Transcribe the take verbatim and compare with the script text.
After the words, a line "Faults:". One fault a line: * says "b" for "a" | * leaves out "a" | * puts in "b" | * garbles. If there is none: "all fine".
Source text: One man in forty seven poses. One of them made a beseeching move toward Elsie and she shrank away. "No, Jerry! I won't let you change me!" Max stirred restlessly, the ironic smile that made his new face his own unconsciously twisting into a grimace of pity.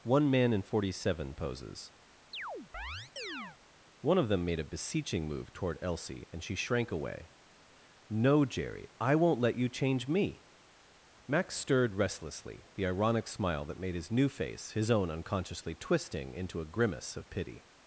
One man in forty seven poses. One of them made a beseeching move toward Elsie and she shrank away. "No, Jerry! I won't let you change me!" Max stirred restlessly, the ironic smile that made his new face his own unconsciously twisting into a grimace of pity.
Faults:
all fine